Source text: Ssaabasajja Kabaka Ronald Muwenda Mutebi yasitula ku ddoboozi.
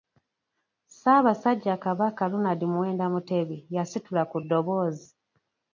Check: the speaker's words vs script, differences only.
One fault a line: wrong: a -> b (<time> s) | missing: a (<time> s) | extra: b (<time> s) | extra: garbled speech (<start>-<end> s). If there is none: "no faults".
no faults